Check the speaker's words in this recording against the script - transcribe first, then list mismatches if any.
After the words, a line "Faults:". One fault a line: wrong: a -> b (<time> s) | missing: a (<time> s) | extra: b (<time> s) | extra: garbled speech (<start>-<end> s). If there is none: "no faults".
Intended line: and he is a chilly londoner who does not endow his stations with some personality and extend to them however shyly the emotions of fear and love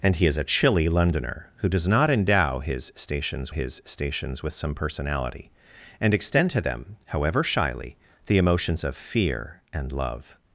and he is a chilly londoner who does not endow his stations his stations with some personality and extend to them however shyly the emotions of fear and love
Faults:
extra: his stations (3.5 s)